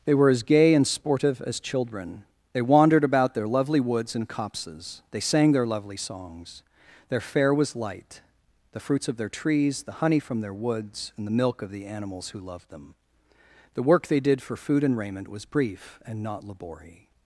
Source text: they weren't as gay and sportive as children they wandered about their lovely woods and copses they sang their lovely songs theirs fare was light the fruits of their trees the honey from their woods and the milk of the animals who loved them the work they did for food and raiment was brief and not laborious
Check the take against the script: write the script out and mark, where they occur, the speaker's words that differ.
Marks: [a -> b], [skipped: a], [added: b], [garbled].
they [weren't -> were] as gay and sportive as children they wandered about their lovely woods and copses they sang their lovely songs [theirs -> their] fare was light the fruits of their trees the honey from their woods and the milk of the animals who loved them the work they did for food and raiment was brief and not laborious